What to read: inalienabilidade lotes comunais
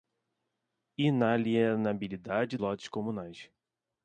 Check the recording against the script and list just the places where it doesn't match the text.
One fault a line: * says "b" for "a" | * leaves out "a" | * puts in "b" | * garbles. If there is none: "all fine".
all fine